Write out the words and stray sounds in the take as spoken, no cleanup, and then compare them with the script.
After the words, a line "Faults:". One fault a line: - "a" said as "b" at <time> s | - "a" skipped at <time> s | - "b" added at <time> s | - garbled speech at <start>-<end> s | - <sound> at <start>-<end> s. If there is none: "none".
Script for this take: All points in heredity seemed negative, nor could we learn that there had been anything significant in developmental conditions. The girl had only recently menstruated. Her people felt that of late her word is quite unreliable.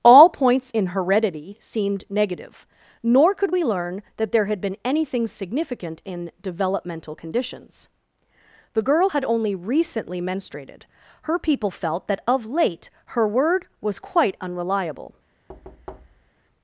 All points in heredity seemed negative, nor could we learn that there had been anything significant in developmental conditions. The girl had only recently menstruated. Her people felt that of late her word was quite unreliable.
Faults:
- "is" said as "was" at 13.8 s
- thud at 15.5-16.3 s